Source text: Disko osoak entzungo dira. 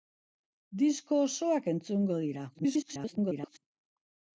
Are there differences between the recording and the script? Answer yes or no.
yes